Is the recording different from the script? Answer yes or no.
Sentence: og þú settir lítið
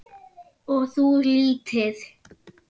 yes